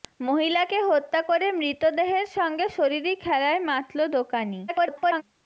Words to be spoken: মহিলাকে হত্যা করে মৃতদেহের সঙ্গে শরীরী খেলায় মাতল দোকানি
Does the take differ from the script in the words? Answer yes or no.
yes